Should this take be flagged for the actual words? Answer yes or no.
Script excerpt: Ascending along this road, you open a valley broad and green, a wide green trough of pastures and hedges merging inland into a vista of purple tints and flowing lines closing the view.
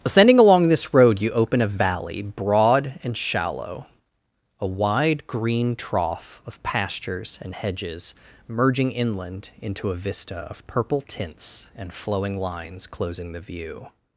yes